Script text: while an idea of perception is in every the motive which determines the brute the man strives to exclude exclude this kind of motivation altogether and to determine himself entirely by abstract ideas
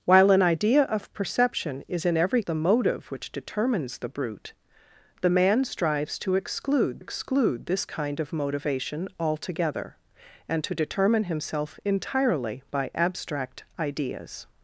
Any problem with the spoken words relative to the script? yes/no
no